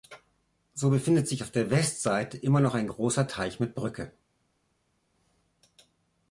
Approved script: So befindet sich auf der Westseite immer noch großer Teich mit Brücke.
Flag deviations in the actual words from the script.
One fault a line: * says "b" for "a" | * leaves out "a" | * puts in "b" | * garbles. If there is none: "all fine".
* puts in "ein"